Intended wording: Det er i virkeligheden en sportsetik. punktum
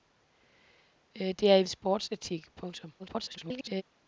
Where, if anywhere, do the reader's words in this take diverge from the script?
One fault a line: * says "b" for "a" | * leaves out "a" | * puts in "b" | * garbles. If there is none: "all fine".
* leaves out "virkeligheden en"
* garbles